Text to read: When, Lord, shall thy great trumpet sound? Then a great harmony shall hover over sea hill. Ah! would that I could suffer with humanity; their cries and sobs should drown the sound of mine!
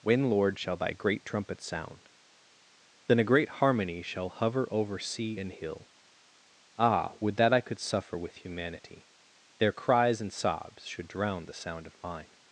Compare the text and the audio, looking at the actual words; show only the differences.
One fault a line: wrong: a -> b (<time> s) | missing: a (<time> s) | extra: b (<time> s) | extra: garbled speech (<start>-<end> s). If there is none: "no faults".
extra: and (5.4 s)